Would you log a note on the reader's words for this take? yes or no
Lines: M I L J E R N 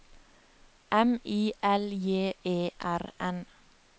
no